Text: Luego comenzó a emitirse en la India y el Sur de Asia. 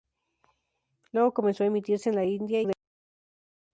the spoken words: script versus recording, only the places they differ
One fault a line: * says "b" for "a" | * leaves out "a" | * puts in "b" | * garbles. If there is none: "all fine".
* leaves out "y el Sur"